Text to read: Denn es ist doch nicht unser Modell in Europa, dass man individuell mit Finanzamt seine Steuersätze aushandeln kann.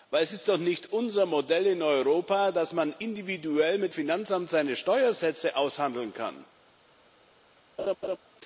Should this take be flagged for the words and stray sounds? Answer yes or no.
yes